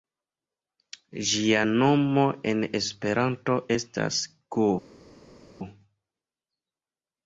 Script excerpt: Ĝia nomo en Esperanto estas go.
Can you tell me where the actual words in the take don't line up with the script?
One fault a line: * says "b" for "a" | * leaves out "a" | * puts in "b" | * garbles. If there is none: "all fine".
all fine